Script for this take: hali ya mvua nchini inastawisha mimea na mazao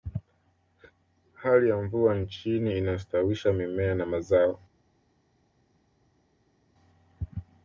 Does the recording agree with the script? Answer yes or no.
yes